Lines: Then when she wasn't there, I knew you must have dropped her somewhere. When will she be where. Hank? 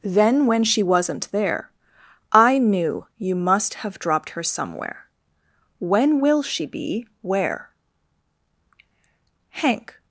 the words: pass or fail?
pass